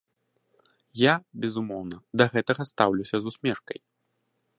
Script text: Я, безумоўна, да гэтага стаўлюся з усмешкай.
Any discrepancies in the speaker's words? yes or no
no